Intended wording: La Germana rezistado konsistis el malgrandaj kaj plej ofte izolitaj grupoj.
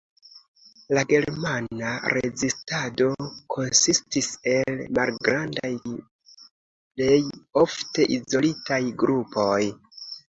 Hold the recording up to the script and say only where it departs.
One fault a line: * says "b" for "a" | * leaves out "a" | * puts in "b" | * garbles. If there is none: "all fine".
* leaves out "kaj"